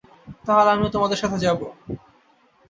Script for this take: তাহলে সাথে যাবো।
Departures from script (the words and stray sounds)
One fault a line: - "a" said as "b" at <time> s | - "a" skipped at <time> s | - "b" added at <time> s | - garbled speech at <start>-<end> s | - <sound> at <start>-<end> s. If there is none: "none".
- "আমিও তোমাদের" added at 0.7 s